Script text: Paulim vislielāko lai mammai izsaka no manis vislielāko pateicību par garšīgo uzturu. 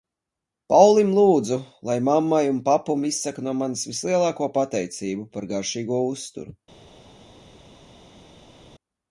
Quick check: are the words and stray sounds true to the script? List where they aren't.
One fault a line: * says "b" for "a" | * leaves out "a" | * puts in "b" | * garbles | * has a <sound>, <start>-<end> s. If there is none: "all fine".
* says "lūdzu" for "vislielāko"
* puts in "un papum"